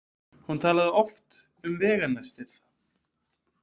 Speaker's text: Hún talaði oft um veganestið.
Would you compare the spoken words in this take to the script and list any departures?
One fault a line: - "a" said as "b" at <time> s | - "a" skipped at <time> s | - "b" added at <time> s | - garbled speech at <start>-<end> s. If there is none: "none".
none